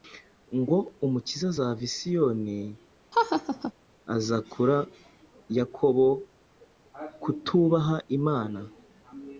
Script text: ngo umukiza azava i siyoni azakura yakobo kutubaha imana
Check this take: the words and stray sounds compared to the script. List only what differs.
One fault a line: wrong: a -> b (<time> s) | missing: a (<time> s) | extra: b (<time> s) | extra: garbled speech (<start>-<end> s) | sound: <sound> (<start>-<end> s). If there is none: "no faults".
sound: laugh (3.1-3.7 s)